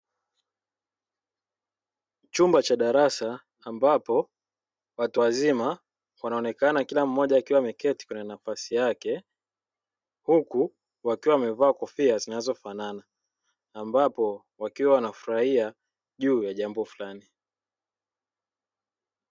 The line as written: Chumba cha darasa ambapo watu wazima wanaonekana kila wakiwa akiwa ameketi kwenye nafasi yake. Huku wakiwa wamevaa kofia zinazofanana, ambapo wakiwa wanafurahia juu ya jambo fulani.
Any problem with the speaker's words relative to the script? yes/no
yes